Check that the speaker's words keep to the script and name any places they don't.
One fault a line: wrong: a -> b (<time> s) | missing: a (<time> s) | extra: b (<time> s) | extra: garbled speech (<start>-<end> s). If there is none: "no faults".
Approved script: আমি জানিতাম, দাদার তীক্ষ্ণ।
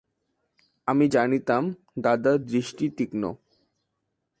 extra: দৃষ্টি (2.5 s)